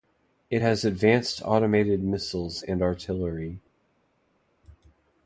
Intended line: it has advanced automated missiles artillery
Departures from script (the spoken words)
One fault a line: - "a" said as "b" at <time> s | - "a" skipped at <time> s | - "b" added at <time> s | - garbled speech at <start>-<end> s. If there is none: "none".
- "and" added at 2.6 s